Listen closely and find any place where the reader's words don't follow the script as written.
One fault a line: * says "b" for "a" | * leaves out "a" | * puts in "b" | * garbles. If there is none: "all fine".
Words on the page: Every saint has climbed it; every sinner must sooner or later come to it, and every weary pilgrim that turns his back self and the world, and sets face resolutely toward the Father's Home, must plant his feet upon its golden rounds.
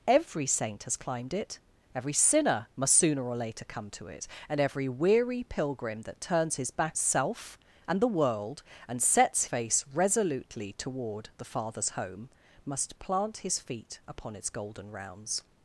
all fine